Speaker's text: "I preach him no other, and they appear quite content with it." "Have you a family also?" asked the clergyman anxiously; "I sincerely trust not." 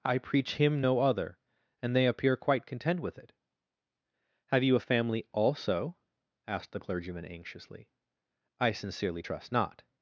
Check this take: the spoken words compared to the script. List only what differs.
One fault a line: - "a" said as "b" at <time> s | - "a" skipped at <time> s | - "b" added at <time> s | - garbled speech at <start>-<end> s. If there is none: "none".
none